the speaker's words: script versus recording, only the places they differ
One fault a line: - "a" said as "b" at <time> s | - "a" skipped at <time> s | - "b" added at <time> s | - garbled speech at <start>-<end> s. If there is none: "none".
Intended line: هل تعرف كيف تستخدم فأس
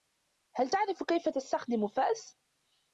none